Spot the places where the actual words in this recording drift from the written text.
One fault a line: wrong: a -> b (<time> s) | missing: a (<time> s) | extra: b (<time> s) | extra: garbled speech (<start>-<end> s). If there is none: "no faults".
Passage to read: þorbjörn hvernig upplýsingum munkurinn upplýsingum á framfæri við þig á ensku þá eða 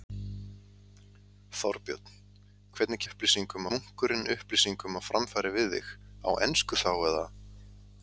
no faults